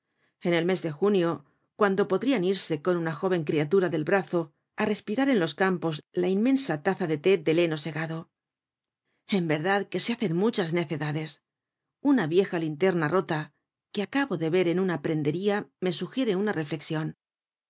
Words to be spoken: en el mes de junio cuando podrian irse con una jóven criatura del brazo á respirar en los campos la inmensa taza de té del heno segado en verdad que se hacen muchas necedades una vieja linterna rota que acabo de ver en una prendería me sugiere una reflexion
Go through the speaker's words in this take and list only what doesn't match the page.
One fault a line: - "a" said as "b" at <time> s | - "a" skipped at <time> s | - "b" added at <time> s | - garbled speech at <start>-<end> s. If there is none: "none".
none